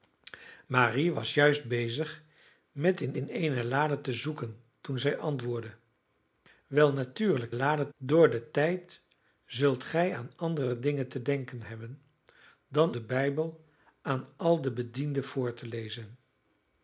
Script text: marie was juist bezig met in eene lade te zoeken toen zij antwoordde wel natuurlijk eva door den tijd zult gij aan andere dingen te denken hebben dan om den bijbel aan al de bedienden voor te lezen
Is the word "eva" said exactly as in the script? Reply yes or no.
no